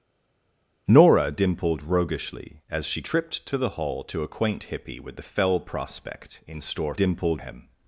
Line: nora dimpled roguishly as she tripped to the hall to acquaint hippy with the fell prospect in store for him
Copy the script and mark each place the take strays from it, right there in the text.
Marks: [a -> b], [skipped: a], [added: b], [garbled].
nora dimpled roguishly as she tripped to the hall to acquaint hippy with the fell prospect in store [for -> dimpled] him